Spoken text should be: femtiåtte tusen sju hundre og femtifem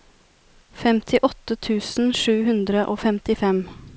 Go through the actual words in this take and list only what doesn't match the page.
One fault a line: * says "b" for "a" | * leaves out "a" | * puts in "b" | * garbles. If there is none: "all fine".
all fine